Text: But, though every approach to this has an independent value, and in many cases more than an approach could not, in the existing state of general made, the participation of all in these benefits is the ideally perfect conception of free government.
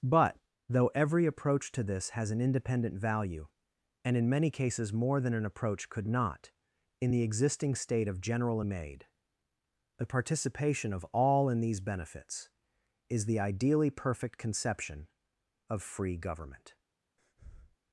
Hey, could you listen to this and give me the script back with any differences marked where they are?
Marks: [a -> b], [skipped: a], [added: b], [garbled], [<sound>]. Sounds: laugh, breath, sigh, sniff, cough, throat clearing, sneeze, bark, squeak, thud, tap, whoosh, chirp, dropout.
But, though every approach to this has an independent value, and in many cases more than an approach could not, in the existing state of general made, the participation of all in these benefits is the ideally perfect conception of free government. [breath]